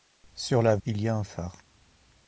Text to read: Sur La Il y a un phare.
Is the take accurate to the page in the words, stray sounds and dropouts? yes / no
yes